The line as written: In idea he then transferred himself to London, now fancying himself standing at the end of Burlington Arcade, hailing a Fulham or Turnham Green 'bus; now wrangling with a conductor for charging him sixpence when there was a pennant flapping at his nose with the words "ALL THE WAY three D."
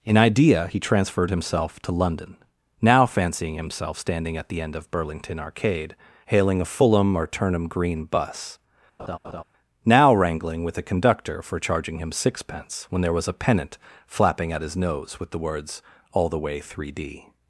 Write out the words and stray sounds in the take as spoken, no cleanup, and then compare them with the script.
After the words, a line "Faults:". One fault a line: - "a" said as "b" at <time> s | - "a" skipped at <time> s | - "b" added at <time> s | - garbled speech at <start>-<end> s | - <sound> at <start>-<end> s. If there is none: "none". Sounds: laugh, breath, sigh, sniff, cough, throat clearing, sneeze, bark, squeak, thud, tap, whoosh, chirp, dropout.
In idea he transferred himself to London, now fancying himself standing at the end of Burlington Arcade, hailing a Fulham or Turnham Green 'bus; now wrangling with a conductor for charging him sixpence when there was a pennant flapping at his nose with the words "ALL THE WAY three D."
Faults:
- "then" skipped at 0.8 s
- laugh at 9.0-9.4 s